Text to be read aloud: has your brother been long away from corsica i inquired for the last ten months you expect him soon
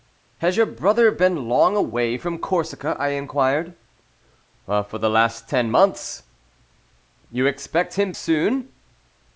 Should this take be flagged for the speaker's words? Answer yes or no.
no